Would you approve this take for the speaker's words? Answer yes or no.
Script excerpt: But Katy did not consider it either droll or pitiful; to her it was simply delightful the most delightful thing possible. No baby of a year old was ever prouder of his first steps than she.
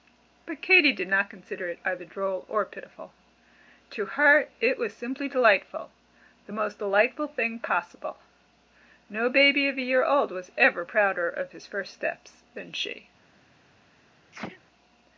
yes